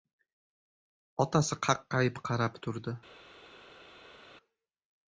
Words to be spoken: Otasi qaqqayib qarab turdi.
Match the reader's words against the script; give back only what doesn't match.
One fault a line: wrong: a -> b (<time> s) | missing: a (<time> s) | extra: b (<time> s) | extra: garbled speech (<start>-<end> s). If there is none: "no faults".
no faults